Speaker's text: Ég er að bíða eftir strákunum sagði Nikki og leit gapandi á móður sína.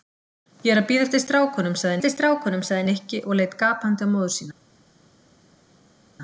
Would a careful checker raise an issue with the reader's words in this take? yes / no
yes